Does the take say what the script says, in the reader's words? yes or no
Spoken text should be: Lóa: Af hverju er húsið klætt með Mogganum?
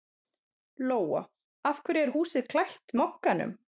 no